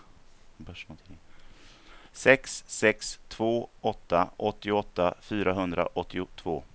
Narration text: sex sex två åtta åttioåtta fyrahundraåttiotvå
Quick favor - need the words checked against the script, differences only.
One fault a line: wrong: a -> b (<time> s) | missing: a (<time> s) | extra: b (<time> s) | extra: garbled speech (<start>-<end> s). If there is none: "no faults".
no faults